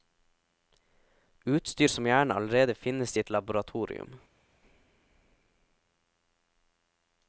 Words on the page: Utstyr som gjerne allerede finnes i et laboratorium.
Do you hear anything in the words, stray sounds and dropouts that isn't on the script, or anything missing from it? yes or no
no